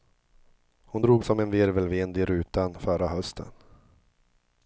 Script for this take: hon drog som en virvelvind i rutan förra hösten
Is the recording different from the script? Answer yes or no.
no